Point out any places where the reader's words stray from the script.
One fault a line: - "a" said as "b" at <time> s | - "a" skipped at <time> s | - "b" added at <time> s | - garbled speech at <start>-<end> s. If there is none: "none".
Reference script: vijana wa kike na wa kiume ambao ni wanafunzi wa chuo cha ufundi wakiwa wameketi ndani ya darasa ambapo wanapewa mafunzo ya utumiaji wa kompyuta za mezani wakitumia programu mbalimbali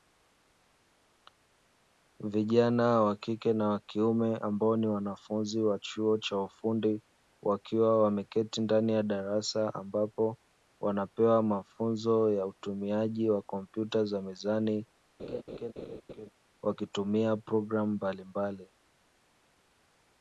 none